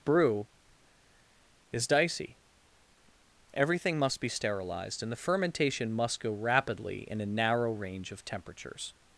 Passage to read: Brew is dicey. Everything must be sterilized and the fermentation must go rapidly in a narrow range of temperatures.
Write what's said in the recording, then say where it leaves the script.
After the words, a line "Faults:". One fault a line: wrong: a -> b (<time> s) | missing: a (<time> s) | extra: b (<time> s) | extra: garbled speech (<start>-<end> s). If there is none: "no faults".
Brew is dicey. Everything must be sterilized and the fermentation must go rapidly in a narrow range of temperatures.
Faults:
no faults